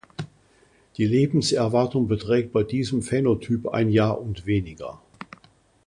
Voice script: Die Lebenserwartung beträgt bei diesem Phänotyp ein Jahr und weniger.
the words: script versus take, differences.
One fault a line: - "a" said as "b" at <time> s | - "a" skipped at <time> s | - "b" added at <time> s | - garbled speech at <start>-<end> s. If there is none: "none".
none